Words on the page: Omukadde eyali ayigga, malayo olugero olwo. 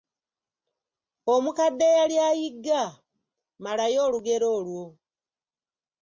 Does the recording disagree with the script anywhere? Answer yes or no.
no